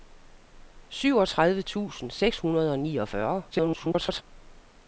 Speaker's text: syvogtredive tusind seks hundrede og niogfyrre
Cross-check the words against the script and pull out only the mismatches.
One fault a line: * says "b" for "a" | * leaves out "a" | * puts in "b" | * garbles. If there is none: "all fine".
* garbles